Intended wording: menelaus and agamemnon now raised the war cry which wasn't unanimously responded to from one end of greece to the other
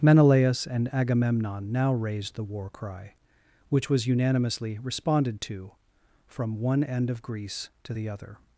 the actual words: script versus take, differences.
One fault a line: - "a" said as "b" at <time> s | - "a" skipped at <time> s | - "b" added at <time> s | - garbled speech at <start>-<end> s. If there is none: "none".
- "wasn't" said as "was" at 3.9 s